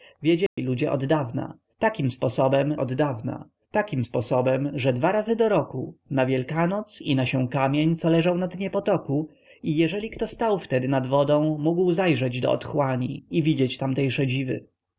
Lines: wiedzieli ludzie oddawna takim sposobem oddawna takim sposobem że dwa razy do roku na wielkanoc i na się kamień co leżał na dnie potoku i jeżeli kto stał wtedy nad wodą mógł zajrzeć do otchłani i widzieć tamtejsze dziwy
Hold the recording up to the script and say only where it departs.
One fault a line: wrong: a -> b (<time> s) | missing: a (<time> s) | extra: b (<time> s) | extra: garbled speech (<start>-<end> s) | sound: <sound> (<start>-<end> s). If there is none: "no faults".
sound: dropout (0.5-0.6 s)